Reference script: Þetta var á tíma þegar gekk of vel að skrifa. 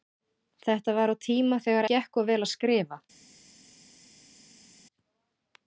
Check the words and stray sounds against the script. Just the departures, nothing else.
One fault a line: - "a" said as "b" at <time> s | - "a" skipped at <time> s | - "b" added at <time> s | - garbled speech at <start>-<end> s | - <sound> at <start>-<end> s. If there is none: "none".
none